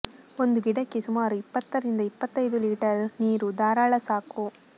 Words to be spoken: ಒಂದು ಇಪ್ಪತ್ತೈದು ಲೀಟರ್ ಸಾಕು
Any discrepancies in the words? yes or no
yes